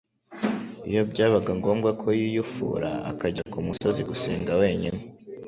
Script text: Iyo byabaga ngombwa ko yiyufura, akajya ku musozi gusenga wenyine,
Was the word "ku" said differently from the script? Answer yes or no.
no